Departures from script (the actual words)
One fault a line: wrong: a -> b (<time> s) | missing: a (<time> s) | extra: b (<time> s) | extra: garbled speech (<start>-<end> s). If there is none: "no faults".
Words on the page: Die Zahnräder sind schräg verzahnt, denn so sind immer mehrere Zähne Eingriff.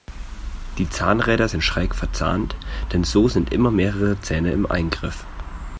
extra: im (4.5 s)